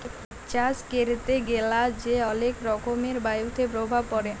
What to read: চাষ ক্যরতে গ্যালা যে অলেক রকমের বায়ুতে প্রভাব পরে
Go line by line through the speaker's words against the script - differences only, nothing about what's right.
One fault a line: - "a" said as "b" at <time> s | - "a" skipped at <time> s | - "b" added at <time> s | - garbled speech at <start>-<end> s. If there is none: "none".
none